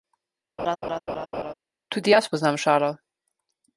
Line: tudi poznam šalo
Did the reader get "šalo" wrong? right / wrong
right